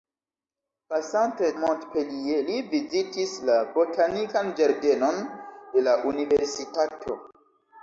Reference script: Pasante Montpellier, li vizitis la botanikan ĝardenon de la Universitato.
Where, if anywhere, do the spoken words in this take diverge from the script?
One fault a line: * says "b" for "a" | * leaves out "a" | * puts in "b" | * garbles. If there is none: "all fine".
all fine